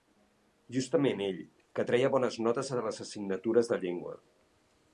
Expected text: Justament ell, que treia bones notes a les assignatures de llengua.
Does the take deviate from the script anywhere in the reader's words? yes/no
no